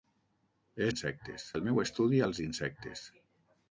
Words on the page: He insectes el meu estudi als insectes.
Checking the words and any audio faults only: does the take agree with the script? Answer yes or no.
yes